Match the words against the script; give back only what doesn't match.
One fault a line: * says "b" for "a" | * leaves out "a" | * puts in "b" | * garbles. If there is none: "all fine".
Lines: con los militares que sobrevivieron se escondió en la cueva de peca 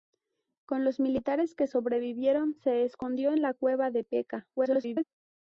* garbles